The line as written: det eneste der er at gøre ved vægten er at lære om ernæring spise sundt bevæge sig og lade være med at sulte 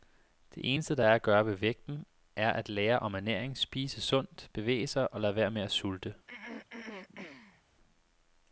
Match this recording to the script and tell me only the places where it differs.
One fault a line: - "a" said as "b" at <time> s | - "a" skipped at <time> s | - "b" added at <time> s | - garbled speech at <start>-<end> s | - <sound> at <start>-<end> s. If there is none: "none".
- throat clearing at 6.3-7.6 s